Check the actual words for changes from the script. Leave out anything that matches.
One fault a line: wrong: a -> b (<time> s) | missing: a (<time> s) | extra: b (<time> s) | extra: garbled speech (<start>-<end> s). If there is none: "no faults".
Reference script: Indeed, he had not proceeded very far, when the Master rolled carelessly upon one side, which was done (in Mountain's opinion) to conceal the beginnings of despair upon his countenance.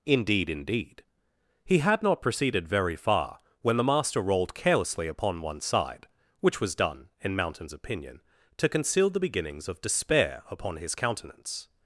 extra: indeed (0.5 s)